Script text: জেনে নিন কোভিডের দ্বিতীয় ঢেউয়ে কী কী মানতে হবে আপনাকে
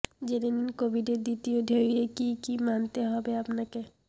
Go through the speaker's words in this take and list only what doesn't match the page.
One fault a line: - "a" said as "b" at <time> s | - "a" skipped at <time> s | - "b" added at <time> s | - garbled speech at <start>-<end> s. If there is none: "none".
none